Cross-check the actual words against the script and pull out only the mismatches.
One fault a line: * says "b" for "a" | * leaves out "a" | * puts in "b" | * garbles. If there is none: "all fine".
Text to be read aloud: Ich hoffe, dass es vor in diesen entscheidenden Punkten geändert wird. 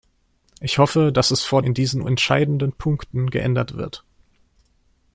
all fine